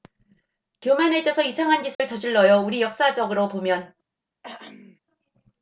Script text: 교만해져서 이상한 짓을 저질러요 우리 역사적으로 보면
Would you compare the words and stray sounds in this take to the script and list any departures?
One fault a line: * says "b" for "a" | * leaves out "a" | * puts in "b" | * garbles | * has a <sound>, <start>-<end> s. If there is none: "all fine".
* has a dropout, 1.9-2.0 s
* has a throat clearing, 4.4-5.0 s